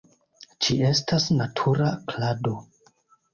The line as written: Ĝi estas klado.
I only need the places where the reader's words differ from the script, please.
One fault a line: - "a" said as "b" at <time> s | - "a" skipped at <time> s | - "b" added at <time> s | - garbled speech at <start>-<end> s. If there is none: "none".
- "natura" added at 1.4 s